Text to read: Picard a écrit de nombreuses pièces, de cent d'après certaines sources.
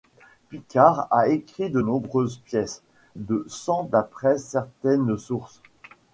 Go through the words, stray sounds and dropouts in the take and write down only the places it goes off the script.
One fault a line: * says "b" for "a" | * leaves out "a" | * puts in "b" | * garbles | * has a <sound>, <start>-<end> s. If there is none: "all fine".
all fine